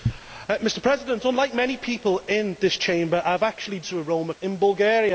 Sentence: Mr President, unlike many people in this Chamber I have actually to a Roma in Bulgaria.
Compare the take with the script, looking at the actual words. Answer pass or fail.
pass